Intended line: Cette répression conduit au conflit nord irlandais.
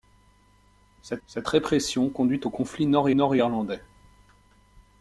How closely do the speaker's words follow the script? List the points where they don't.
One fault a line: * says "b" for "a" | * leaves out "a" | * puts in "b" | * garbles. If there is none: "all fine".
* puts in "cette"
* puts in "nord"